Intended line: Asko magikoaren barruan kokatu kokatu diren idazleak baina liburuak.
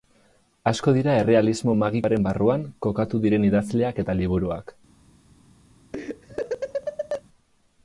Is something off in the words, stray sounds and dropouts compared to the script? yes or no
yes